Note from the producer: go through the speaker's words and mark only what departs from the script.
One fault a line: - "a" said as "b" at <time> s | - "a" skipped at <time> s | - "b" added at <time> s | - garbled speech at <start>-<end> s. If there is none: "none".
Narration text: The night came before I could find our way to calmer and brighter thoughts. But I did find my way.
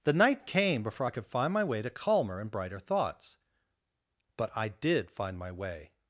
- "our" said as "my" at 1.5 s